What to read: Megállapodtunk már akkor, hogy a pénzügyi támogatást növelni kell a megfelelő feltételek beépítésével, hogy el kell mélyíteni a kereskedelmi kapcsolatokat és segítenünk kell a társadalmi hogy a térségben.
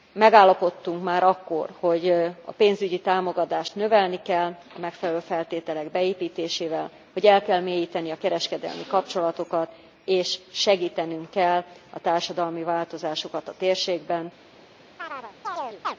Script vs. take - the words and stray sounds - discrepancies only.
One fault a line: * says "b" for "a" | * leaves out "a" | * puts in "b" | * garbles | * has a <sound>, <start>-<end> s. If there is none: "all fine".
* says "változásokat" for "hogy"
* has a chirp, 15.0-16.0 s